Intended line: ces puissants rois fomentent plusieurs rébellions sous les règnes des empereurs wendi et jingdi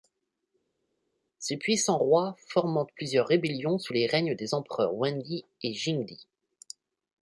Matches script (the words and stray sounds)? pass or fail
pass